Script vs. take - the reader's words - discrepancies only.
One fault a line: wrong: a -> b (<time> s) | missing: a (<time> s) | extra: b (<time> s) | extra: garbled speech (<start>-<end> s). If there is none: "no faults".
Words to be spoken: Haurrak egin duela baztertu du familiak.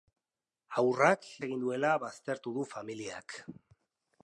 no faults